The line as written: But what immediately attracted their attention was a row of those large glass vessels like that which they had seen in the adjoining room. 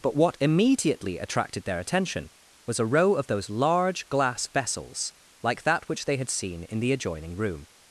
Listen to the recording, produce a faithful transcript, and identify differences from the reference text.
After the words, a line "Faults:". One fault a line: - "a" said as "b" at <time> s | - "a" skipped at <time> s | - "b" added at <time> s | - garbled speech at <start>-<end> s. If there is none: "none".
But what immediately attracted their attention was a row of those large glass vessels like that which they had seen in the adjoining room.
Faults:
none